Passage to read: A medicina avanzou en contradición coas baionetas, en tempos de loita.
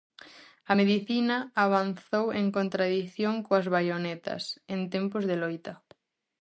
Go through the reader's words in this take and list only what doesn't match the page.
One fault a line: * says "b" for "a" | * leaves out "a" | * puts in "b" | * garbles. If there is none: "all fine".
all fine